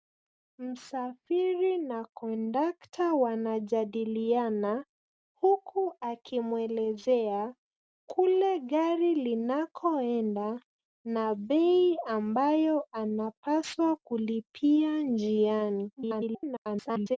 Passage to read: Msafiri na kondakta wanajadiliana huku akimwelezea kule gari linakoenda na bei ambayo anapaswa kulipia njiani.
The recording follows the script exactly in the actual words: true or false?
false